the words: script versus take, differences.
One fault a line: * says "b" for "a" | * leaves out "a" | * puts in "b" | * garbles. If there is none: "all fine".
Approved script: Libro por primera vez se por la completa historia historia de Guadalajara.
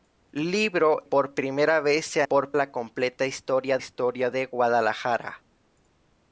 all fine